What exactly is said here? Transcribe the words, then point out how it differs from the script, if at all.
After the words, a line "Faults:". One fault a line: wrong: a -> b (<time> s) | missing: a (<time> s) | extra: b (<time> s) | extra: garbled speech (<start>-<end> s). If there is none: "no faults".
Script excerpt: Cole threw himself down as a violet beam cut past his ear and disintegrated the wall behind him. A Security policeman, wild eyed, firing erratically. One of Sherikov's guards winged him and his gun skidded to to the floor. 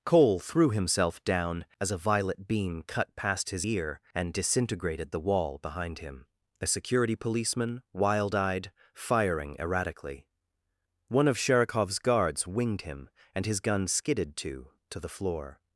Cole threw himself down as a violet beam cut past his ear and disintegrated the wall behind him. A Security policeman, wild eyed, firing erratically. One of Sherikov's guards winged him and his gun skidded to to the floor.
Faults:
no faults